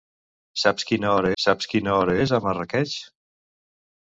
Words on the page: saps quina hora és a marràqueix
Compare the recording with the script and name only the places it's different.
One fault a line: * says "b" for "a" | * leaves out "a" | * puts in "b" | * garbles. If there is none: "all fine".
* puts in "saps quina hora"